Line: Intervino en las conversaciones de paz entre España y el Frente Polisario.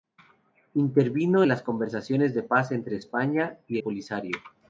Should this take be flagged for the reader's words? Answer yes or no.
yes